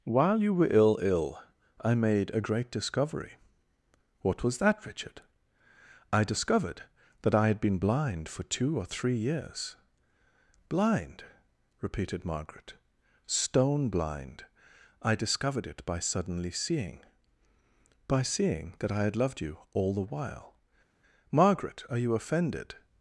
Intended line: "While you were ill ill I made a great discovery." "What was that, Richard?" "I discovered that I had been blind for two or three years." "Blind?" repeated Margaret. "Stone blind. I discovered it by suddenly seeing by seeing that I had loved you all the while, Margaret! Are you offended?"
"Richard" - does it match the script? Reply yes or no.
yes